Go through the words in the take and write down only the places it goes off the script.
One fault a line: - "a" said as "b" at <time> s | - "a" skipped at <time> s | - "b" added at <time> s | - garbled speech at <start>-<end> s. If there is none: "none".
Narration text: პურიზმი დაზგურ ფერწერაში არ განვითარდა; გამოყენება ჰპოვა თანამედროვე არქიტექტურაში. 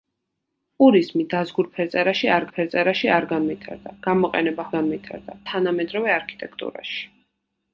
- "ფერწერაში არ" added at 2.5 s
- "ჰპოვა" said as "განვითარდა" at 4.8 s